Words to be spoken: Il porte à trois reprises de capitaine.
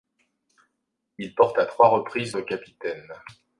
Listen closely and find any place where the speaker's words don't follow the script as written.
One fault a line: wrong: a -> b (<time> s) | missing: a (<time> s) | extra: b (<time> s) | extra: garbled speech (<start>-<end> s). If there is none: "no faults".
no faults